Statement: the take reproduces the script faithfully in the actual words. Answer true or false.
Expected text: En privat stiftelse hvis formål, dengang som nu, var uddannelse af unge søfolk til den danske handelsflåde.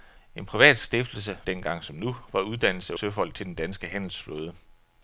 false